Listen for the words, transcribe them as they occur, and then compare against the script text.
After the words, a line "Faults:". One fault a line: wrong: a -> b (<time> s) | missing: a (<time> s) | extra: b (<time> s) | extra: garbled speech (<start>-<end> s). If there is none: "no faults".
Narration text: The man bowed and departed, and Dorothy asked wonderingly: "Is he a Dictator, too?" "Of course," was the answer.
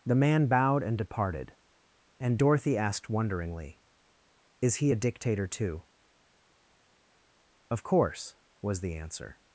The man bowed and departed, and Dorothy asked wonderingly: "Is he a Dictator, too?" "Of course," was the answer.
Faults:
no faults